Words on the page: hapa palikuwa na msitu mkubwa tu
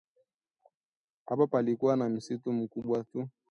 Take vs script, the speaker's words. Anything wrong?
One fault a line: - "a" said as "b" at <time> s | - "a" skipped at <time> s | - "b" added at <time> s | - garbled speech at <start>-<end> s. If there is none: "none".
none